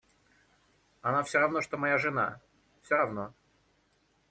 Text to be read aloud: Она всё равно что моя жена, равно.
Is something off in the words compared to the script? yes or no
yes